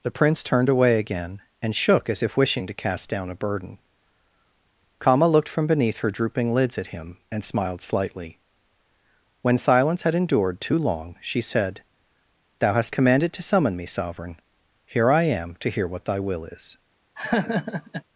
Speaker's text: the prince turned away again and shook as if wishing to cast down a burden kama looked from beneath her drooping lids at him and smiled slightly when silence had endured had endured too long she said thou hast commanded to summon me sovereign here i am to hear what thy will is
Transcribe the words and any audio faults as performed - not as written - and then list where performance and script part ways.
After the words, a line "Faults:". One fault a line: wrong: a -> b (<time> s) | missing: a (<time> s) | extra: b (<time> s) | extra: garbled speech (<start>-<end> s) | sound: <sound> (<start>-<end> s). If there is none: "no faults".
the prince turned away again and shook as if wishing to cast down a burden kama looked from beneath her drooping lids at him and smiled slightly when silence had endured too long she said thou hast commanded to summon me sovereign here i am to hear what thy will is
Faults:
missing: had endured (10.6 s)
sound: laugh (17.2-18.0 s)